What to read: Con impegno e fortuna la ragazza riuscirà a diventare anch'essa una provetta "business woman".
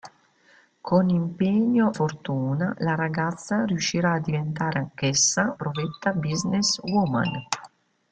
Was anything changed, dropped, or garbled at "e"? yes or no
yes